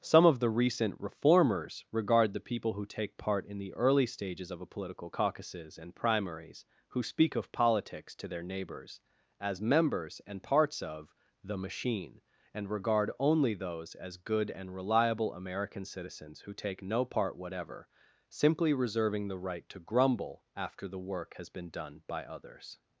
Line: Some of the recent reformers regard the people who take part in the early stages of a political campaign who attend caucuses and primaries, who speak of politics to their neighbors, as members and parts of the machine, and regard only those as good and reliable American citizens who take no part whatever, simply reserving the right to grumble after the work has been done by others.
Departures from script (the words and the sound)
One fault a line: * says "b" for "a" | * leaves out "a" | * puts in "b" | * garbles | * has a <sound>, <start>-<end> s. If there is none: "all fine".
* leaves out "campaign who attend"